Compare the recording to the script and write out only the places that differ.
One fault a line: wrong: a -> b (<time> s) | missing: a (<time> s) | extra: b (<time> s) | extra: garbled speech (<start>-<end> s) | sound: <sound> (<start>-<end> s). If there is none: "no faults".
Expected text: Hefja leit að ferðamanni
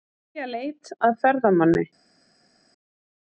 no faults